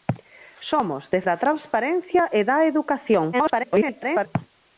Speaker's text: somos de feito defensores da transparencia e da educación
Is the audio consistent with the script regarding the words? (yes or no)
no